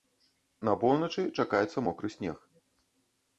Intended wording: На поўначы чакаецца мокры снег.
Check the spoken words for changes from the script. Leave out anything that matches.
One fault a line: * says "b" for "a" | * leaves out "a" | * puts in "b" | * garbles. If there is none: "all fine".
all fine